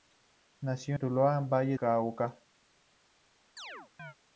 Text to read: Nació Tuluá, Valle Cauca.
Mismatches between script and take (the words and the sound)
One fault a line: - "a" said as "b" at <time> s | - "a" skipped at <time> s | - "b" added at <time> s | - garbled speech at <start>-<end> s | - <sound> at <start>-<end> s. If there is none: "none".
- chirp at 3.6-4.1 s